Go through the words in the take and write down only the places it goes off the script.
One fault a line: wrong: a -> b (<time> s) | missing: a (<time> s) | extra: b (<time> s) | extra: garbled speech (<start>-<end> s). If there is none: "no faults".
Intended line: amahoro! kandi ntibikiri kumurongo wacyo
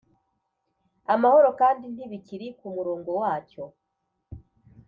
no faults